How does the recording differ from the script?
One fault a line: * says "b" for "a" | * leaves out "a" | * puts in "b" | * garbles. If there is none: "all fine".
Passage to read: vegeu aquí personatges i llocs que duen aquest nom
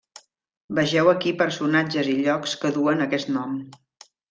all fine